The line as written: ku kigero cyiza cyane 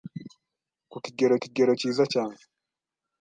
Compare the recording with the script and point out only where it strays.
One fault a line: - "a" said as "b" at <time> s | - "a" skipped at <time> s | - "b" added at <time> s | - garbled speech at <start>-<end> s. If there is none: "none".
- "kigero" added at 1.4 s